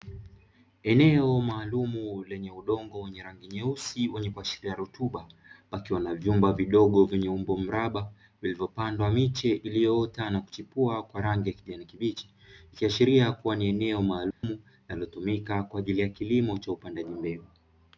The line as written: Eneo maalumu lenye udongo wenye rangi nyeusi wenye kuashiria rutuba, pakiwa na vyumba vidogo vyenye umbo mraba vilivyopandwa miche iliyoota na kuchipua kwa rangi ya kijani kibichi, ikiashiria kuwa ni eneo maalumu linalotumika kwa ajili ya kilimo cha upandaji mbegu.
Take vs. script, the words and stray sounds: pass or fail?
fail